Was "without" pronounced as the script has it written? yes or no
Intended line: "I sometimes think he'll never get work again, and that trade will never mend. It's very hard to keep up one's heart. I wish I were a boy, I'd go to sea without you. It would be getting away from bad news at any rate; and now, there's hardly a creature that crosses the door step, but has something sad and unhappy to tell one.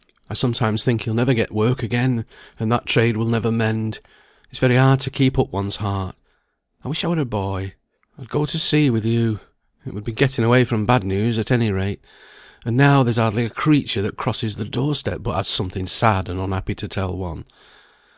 no